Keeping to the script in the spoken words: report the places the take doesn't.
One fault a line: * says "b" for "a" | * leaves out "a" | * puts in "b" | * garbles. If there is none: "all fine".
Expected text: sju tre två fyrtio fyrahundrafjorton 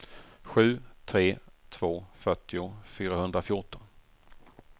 all fine